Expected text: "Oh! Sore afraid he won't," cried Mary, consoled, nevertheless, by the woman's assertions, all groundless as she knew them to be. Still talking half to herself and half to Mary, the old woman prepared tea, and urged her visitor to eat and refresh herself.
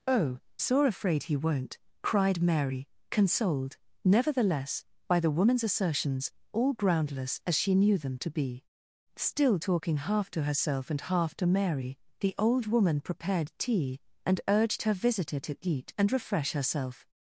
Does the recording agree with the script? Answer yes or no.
yes